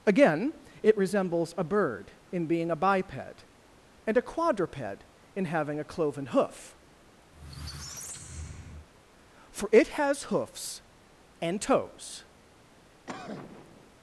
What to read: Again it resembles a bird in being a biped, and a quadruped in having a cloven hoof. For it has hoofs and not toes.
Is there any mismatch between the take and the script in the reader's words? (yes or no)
yes